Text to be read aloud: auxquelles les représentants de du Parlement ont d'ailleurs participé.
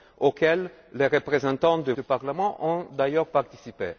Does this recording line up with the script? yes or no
yes